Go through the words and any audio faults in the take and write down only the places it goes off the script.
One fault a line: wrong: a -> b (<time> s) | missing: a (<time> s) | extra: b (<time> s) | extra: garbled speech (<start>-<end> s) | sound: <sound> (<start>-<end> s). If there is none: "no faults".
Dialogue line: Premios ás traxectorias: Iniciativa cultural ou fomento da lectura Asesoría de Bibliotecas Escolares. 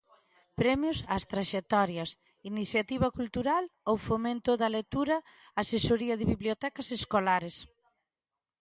no faults